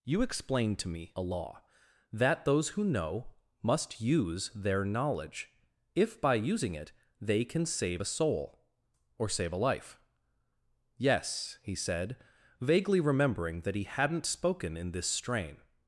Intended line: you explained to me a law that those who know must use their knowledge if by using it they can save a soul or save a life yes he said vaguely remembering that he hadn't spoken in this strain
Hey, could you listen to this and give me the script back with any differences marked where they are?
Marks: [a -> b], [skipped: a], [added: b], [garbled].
you explained to me a law that those who know must use their knowledge if by using it they can save a soul or save a life yes he said vaguely remembering that he hadn't spoken in this strain